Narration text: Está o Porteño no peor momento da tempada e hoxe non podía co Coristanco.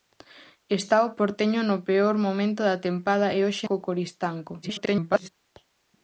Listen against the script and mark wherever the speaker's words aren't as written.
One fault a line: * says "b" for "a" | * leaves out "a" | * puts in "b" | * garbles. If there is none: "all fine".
* leaves out "non podía"
* garbles